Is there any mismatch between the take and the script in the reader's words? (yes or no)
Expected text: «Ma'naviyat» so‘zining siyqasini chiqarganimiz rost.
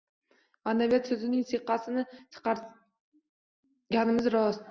no